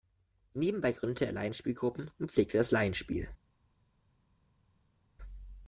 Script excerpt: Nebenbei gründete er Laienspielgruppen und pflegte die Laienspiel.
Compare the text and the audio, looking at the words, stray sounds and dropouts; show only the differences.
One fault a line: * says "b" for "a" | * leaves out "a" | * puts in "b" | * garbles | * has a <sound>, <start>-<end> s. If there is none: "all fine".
* says "das" for "die"